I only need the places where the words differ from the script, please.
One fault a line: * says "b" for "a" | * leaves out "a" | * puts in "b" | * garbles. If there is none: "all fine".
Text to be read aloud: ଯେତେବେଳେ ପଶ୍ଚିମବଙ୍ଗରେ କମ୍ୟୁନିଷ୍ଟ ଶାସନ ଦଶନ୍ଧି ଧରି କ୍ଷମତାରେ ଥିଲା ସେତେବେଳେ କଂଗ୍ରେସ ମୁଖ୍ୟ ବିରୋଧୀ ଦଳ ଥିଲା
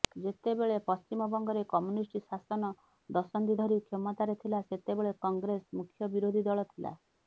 all fine